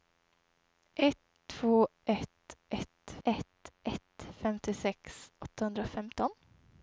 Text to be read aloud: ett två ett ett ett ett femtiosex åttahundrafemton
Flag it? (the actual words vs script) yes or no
no